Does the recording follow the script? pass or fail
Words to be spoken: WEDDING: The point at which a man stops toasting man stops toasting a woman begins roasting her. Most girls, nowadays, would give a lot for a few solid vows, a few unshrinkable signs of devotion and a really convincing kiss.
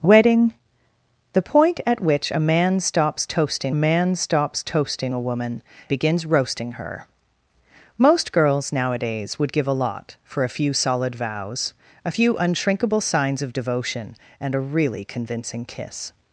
pass